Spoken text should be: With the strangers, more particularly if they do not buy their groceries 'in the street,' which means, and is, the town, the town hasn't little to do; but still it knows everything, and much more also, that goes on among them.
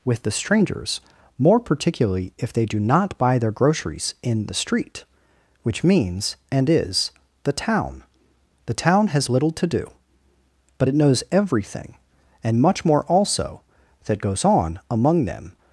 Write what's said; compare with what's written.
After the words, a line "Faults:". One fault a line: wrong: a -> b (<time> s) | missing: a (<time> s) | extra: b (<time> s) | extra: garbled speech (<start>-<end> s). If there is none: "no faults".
With the strangers, more particularly if they do not buy their groceries 'in the street,' which means, and is, the town, the town has little to do; but it knows everything, and much more also, that goes on among them.
Faults:
wrong: hasn't -> has (9.1 s)
missing: still (10.9 s)